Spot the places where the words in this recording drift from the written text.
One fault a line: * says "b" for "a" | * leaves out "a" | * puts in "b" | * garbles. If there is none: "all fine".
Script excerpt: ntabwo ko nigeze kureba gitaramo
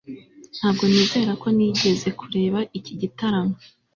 * puts in "nizera"
* puts in "iki"